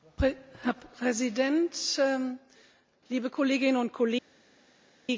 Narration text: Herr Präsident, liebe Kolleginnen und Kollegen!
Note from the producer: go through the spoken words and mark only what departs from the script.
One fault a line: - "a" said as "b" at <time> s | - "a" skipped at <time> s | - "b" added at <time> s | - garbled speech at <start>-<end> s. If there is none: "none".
none